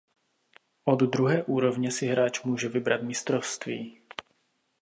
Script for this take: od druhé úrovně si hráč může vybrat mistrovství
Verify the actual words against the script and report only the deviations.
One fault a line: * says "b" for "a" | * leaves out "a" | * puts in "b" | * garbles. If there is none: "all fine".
all fine